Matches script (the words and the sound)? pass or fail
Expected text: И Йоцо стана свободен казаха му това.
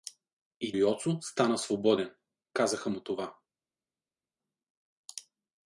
pass